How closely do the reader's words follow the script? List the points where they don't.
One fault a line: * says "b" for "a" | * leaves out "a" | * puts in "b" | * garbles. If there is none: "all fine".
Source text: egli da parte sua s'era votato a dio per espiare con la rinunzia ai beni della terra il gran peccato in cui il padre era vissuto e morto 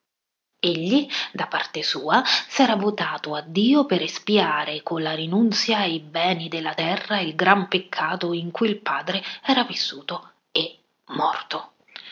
all fine